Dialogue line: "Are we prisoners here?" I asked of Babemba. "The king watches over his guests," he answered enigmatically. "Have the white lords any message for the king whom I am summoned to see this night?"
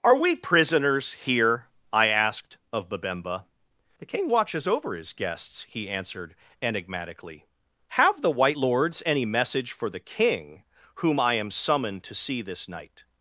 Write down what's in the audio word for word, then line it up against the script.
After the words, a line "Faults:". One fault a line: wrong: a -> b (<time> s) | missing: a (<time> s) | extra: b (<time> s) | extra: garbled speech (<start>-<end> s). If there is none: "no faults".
"Are we prisoners here?" I asked of Babemba. "The king watches over his guests," he answered enigmatically. "Have the white lords any message for the king whom I am summoned to see this night?"
Faults:
no faults